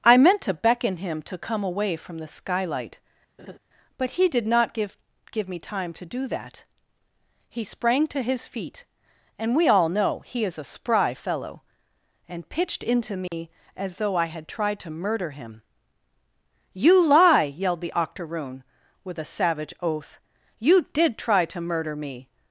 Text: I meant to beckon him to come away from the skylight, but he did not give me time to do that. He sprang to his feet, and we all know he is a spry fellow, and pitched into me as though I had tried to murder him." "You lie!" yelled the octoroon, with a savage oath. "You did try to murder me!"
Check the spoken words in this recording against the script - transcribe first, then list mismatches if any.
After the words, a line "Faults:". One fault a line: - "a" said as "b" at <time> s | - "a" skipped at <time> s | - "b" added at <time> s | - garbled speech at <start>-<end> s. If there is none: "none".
I meant to beckon him to come away from the skylight, but he did not give give me time to do that. He sprang to his feet, and we all know he is a spry fellow, and pitched into me as though I had tried to murder him." "You lie!" yelled the octoroon, with a savage oath. "You did try to murder me!"
Faults:
- "give" added at 5.3 s